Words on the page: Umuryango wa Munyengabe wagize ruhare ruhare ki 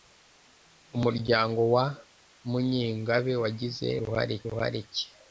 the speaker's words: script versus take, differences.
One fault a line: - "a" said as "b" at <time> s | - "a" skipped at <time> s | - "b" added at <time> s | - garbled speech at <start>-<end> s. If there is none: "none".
none